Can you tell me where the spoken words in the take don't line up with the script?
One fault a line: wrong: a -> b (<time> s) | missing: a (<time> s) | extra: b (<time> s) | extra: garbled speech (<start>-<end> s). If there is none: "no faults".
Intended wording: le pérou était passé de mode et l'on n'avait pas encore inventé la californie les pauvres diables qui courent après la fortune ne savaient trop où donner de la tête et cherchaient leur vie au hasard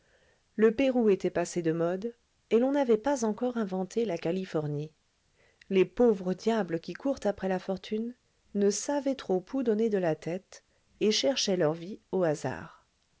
no faults